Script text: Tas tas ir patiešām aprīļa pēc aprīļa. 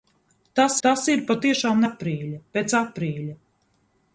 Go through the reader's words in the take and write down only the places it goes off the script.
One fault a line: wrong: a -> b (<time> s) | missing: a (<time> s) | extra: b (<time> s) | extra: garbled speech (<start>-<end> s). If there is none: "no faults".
no faults